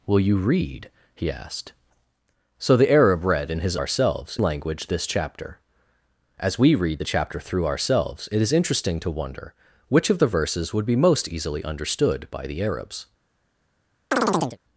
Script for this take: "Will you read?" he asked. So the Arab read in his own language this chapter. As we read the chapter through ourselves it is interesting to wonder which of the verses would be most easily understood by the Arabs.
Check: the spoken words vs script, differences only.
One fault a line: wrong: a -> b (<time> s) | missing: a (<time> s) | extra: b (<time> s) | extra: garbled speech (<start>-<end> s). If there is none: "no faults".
wrong: own -> ourselves (3.7 s)